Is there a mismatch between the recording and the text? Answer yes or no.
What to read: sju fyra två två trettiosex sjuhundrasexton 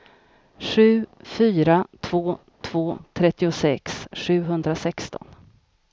no